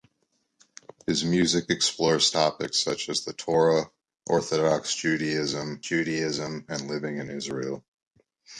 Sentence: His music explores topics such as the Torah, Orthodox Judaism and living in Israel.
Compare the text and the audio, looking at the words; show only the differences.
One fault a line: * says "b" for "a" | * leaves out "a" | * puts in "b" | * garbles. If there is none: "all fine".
* puts in "Judaism"